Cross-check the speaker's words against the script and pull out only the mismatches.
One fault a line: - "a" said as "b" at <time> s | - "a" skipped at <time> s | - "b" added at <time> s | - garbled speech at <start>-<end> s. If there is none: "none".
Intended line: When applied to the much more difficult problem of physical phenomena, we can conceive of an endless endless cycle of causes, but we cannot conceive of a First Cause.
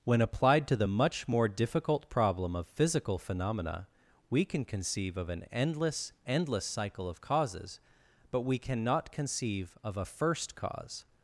none